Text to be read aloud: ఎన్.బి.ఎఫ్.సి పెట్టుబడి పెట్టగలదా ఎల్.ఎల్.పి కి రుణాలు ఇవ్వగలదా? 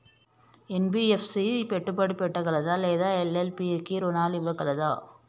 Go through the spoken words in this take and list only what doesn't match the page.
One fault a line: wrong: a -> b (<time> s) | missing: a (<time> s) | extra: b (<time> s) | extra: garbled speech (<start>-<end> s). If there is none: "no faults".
extra: లేదా (2.8 s)